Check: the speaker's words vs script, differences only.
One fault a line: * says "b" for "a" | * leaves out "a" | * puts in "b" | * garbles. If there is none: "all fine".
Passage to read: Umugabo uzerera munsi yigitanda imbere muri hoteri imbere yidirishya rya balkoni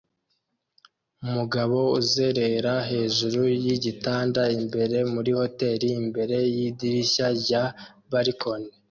* says "hejuru" for "munsi"